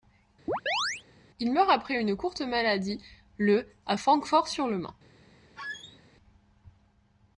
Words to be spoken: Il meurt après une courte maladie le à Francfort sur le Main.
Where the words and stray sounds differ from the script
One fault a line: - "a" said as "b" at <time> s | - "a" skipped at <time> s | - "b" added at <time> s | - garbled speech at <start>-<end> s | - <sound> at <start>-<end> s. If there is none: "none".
- chirp at 0.5-1.0 s
- squeak at 5.6-6.0 s